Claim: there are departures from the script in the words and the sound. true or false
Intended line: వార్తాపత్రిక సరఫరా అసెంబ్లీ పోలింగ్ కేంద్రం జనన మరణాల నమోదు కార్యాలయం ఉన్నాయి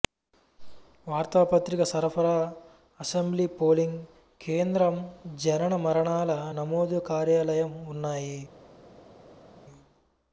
false